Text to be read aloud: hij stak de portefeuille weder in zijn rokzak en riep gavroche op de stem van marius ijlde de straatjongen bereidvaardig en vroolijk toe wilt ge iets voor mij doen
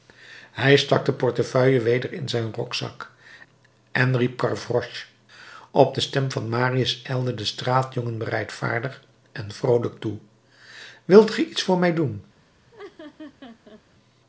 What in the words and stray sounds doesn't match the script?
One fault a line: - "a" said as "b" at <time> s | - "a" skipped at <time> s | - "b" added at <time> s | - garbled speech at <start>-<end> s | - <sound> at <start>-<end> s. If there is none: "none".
- laugh at 12.7-13.8 s